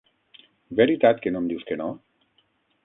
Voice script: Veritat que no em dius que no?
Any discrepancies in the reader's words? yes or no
no